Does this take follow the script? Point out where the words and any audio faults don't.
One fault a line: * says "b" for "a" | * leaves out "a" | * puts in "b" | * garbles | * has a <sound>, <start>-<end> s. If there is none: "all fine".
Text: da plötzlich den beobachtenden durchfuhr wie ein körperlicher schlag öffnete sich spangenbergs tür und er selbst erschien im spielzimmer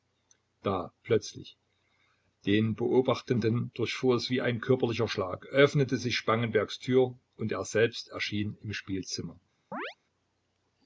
* puts in "es"
* has a chirp, 9.7-10.0 s